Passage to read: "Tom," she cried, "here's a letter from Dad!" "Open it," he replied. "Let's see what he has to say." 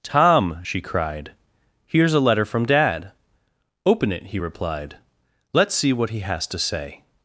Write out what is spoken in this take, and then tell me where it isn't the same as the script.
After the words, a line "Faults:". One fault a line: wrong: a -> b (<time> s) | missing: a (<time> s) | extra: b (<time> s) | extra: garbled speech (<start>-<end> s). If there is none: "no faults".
"Tom," she cried, "here's a letter from Dad!" "Open it," he replied. "Let's see what he has to say."
Faults:
no faults